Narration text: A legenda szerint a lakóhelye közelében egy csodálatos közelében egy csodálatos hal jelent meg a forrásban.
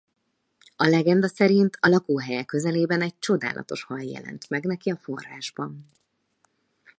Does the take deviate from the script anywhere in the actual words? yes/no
yes